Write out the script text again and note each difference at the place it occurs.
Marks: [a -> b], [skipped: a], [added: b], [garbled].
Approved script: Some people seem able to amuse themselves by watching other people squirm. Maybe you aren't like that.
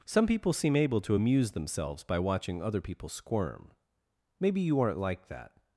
Some people seem able to amuse themselves by watching other people squirm. Maybe you aren't like that.